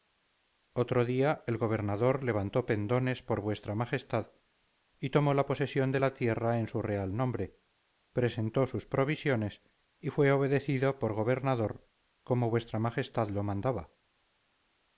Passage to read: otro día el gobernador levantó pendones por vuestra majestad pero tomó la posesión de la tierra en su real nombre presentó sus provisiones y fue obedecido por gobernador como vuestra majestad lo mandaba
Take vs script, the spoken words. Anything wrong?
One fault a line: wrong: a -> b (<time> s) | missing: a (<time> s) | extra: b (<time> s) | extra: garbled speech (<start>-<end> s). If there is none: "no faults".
wrong: pero -> y (5.0 s)